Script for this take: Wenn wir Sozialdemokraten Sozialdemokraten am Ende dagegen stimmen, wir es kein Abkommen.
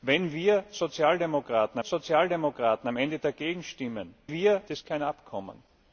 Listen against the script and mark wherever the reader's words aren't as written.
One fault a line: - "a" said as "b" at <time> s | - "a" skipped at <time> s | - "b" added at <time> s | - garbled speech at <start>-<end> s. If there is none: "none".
none